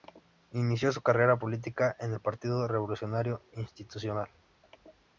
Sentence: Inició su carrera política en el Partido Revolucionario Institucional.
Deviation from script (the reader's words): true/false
false